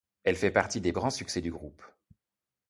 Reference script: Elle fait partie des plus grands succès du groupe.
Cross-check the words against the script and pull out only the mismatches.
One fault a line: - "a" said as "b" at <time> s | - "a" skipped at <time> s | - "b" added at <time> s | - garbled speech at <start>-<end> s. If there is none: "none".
- "plus" skipped at 0.9 s